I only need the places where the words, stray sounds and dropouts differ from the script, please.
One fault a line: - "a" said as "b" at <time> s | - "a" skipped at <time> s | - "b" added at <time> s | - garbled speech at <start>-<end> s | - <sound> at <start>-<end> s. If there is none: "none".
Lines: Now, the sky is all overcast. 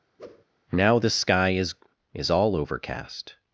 - whoosh at 0.2-0.4 s
- "is" added at 2.1 s